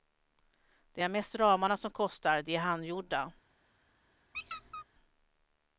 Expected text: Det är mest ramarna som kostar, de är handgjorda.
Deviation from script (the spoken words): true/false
false